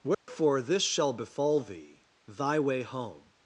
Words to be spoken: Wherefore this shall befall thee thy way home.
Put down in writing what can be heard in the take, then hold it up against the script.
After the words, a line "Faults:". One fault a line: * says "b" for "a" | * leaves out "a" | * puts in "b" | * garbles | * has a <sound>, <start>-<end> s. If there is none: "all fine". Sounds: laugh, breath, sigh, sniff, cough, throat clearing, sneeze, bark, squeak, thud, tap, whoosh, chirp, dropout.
Wherefore this shall befall thee thy way home.
Faults:
* has a dropout, 0.1-0.3 s